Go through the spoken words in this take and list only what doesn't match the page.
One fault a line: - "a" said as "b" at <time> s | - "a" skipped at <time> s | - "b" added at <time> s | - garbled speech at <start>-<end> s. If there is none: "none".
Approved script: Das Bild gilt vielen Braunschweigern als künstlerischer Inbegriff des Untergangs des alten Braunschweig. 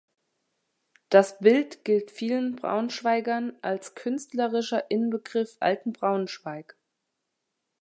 - "des Untergangs des" skipped at 5.6 s